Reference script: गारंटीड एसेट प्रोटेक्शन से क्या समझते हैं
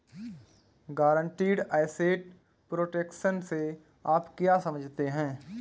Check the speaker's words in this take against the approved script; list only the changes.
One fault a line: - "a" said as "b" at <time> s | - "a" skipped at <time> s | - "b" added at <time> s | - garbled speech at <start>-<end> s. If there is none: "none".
- "आप" added at 4.1 s